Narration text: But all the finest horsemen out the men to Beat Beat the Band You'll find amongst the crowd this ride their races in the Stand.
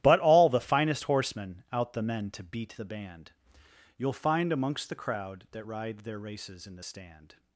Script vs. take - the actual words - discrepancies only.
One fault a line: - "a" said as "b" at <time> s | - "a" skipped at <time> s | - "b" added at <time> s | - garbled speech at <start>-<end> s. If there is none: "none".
- "Beat" skipped at 2.8 s
- "this" said as "that" at 5.5 s